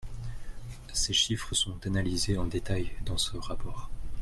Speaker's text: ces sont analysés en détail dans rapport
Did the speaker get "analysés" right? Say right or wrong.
right